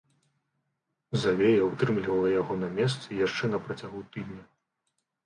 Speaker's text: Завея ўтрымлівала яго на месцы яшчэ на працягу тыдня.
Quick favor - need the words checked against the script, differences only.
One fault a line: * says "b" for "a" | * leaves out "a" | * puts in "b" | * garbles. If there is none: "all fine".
all fine